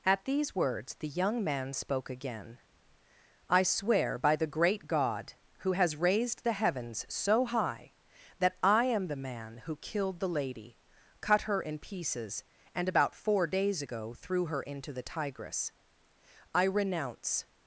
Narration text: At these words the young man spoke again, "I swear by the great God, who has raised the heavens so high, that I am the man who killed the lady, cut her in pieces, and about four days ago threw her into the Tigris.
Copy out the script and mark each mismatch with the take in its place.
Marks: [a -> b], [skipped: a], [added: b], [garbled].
At these words the young man spoke again, "I swear by the great God, who has raised the heavens so high, that I am the man who killed the lady, cut her in pieces, and about four days ago threw her into the Tigris. [added: I renounce]